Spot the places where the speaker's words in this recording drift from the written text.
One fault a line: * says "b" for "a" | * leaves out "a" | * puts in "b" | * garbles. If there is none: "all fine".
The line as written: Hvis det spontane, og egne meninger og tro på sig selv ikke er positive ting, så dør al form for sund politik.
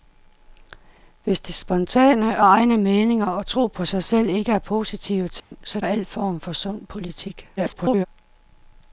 * leaves out "dør"
* garbles